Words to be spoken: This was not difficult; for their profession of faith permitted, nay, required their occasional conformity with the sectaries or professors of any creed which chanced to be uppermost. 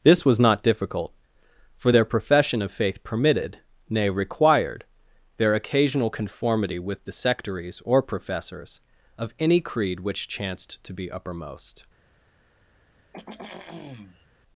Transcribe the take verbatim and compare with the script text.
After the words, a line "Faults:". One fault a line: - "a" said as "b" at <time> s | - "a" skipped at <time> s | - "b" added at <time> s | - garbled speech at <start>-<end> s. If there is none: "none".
This was not difficult; for their profession of faith permitted, nay, required their occasional conformity with the sectaries or professors of any creed which chanced to be uppermost.
Faults:
none